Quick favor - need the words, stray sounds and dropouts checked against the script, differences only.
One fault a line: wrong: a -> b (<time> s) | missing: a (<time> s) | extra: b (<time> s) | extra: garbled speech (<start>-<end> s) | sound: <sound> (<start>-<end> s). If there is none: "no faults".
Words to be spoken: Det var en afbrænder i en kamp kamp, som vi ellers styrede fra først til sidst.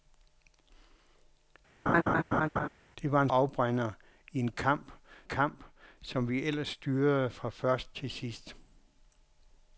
sound: laugh (1.9-2.7 s)